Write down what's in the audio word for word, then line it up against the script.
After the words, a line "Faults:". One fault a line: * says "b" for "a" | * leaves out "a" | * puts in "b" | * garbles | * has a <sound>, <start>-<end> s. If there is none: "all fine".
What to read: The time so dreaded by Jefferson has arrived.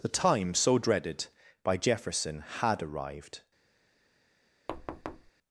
The time so dreaded by Jefferson had arrived.
Faults:
* says "had" for "has"
* has a thud, 4.7-5.3 s